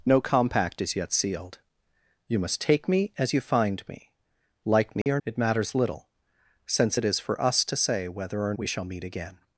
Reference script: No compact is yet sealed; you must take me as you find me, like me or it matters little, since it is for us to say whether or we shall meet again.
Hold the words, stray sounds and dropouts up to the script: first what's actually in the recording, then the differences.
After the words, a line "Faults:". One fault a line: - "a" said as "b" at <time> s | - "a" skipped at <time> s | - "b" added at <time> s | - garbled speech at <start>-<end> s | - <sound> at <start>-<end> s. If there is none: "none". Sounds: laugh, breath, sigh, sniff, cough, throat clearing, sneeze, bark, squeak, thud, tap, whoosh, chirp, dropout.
No compact is yet sealed; you must take me as you find me, like me or it matters little, since it is for us to say whether or we shall meet again.
Faults:
- dropout at 5.0-5.1 s